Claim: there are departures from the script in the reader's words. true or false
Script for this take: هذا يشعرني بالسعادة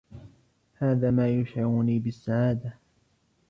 true